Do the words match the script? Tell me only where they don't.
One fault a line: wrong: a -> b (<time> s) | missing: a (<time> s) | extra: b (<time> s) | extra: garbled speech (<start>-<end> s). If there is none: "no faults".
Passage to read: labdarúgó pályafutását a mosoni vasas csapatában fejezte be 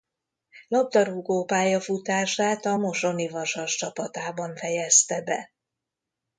no faults